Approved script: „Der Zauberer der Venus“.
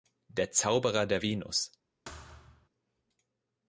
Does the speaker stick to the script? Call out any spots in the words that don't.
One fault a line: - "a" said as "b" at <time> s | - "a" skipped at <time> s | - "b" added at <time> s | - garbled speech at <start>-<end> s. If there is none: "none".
none